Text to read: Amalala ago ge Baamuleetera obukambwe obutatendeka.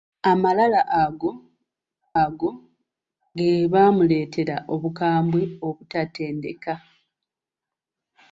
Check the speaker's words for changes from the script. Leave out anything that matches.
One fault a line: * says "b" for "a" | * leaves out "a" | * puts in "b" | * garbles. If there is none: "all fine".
* puts in "ago"